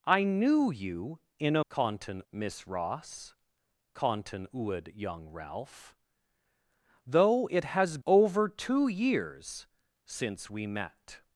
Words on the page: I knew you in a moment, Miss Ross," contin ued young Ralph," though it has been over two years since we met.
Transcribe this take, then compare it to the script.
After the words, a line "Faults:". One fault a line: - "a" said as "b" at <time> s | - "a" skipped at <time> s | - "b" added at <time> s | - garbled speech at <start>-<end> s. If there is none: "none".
I knew you in a contin, Miss Ross," contin ued young Ralph," though it has over two years since we met.
Faults:
- "moment" said as "contin" at 1.7 s
- "been" skipped at 8.0 s